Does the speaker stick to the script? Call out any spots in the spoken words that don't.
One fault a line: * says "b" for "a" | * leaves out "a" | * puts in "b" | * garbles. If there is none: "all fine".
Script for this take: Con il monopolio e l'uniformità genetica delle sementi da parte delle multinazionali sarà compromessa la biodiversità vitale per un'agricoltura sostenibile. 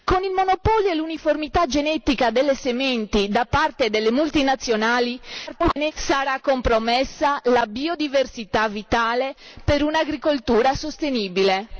* garbles